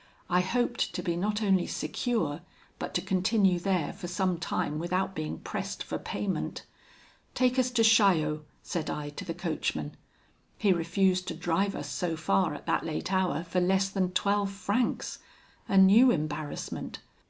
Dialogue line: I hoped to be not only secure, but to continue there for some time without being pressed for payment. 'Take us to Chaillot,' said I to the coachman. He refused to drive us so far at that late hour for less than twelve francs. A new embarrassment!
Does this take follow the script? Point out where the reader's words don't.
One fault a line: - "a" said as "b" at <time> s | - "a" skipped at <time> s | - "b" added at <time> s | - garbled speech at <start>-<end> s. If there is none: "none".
none